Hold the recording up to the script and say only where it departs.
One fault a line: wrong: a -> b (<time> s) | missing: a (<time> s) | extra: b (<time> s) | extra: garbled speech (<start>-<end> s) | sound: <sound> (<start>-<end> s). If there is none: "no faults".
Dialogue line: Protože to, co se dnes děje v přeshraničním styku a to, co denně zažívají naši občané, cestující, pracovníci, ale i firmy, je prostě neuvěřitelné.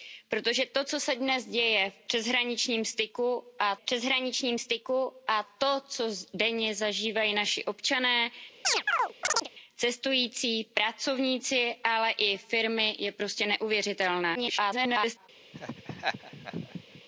extra: přeshraničním styku a (3.8 s)
sound: chirp (8.6-9.5 s)
extra: garbled speech (14.3-15.3 s)
sound: laugh (15.5-17.0 s)